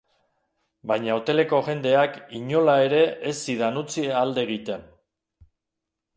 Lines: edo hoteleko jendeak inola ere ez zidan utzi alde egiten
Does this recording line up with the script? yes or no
no